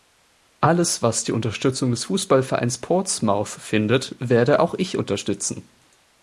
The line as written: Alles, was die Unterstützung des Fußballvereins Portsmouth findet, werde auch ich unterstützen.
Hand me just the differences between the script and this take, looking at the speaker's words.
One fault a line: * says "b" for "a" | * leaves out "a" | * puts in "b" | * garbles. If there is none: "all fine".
all fine